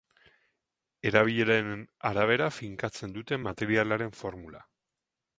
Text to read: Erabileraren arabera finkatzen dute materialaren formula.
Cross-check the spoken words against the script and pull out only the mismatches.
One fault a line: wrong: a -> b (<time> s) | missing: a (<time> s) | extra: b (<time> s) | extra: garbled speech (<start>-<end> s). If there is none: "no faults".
no faults